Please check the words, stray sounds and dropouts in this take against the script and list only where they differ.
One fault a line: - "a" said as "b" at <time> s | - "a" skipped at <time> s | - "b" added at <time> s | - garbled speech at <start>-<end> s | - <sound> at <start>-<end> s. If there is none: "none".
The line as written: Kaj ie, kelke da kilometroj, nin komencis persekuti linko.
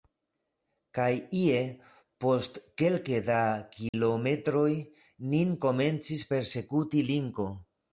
- "post" added at 2.2 s
- dropout at 3.9-3.9 s